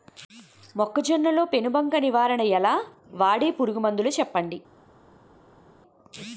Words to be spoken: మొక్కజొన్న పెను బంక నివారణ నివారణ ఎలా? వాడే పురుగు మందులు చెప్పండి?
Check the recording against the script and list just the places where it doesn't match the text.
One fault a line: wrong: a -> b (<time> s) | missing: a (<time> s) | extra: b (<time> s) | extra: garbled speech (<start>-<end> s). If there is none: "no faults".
extra: లో (1.3 s)
missing: నివారణ (2.4 s)